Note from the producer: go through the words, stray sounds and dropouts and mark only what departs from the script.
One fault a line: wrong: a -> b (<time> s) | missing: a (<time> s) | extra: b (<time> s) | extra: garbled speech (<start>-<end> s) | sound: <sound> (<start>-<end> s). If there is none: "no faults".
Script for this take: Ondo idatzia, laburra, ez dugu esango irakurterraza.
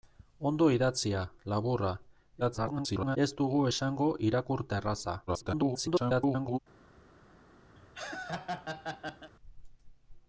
extra: garbled speech (2.4-3.2 s)
extra: garbled speech (5.3-6.6 s)
sound: laugh (7.8-9.3 s)